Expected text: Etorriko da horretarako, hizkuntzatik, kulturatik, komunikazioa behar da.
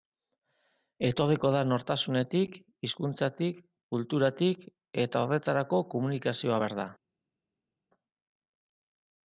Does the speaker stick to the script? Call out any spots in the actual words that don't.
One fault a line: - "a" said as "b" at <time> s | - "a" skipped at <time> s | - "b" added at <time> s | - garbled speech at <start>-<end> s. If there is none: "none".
- "horretarako" said as "nortasunetik" at 1.7 s
- "eta horretarako" added at 5.0 s